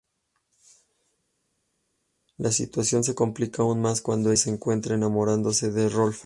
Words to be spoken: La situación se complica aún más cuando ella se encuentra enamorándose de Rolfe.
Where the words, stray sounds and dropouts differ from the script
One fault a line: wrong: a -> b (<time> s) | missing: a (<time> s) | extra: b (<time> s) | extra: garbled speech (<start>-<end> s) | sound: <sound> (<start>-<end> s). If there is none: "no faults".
missing: ella (4.3 s)